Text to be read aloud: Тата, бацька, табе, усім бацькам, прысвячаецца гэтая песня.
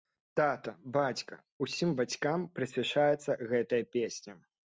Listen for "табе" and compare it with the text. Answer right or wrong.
wrong